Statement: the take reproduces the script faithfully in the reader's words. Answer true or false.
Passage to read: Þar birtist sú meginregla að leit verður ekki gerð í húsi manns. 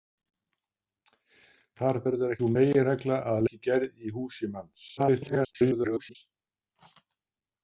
false